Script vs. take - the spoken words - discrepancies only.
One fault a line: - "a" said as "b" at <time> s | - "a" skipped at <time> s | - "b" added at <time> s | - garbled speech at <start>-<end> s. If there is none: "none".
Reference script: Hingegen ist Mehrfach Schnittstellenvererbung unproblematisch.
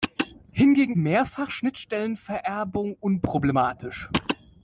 - "ist" skipped at 0.9 s